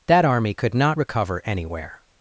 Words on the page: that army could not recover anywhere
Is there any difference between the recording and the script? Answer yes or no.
no